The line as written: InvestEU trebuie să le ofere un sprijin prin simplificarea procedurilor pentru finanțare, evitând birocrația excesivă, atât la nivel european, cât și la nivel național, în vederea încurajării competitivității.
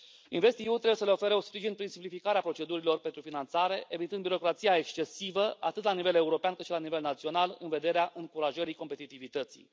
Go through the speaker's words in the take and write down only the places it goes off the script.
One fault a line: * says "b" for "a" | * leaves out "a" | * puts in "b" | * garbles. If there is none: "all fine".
all fine